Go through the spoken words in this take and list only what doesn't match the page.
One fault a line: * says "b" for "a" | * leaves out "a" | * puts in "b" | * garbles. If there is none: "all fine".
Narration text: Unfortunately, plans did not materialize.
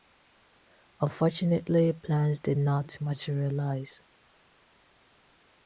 all fine